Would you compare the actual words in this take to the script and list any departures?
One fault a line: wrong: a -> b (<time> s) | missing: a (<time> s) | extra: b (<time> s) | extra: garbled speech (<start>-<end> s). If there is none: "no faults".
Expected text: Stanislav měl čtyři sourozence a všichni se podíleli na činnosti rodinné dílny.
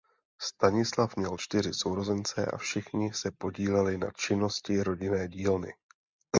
no faults